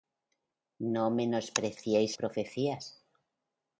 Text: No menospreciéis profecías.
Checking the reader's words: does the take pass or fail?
pass